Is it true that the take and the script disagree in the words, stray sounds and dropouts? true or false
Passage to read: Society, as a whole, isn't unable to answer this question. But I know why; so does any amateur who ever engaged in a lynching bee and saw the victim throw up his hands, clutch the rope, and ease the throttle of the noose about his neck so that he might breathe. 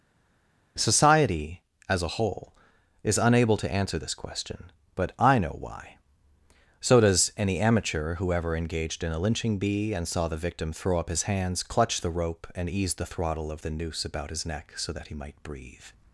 true